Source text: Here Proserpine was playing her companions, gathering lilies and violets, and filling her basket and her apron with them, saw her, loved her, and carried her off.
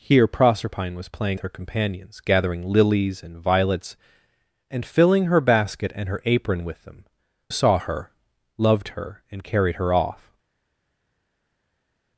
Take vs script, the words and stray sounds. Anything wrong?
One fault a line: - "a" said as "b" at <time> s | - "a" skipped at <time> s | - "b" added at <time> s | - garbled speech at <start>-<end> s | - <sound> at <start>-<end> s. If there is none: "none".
none